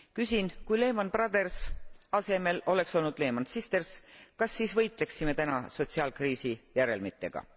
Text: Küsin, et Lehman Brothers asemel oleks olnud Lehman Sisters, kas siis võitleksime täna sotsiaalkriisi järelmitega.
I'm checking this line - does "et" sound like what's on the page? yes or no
no